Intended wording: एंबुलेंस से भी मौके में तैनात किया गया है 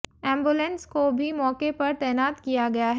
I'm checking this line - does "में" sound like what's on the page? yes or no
no